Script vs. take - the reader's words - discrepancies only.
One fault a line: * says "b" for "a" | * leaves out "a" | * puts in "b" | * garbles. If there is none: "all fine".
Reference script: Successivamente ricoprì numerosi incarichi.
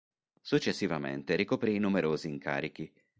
all fine